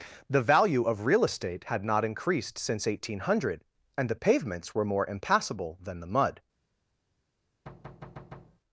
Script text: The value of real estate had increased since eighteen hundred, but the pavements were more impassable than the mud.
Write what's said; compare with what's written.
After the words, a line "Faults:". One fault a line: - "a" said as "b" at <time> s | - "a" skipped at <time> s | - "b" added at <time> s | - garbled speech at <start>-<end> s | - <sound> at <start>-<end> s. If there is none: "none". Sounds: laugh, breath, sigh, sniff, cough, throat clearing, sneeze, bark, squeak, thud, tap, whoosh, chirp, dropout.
The value of real estate had not increased since eighteen hundred, and the pavements were more impassable than the mud.
Faults:
- "not" added at 1.8 s
- "but" said as "and" at 4.0 s
- thud at 7.7-8.6 s